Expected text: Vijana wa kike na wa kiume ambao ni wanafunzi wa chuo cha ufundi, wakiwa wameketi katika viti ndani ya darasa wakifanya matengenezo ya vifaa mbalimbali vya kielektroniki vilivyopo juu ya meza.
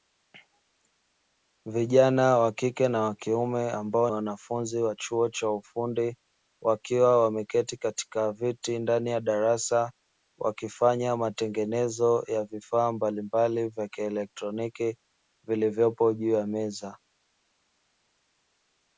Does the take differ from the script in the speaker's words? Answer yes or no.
yes